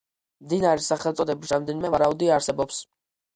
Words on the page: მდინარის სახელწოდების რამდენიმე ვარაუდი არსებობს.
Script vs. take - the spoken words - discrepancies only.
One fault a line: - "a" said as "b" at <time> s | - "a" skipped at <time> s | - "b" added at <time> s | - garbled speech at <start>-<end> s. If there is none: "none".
none